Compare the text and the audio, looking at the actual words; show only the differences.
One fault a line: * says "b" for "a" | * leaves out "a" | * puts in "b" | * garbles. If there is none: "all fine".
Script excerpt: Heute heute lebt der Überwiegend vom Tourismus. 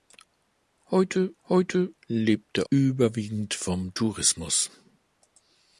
all fine